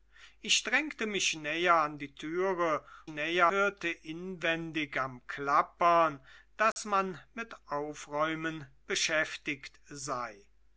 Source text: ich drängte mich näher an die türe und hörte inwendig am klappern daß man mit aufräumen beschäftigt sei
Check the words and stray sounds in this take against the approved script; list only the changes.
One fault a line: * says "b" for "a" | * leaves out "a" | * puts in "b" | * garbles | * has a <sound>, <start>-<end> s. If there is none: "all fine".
* says "näher" for "und"
* has a dropout, 6.7-6.8 s